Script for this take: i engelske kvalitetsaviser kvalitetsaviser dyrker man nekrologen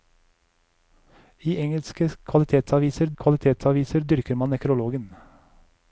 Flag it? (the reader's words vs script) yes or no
no